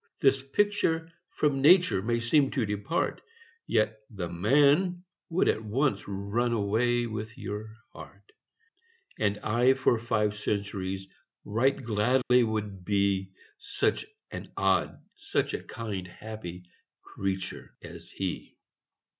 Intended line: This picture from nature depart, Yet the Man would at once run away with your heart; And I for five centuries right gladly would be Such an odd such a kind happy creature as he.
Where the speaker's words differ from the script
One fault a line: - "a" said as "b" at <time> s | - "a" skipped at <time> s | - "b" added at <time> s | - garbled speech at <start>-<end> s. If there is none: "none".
- "may seem to" added at 2.0 s